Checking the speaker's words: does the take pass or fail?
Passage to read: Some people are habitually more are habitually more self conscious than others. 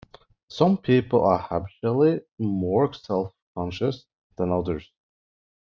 fail